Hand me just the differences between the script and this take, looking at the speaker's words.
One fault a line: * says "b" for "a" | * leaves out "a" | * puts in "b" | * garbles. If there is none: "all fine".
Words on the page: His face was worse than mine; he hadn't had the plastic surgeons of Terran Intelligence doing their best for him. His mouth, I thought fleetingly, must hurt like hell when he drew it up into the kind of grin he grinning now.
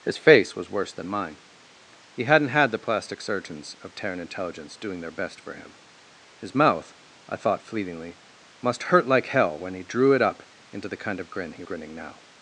all fine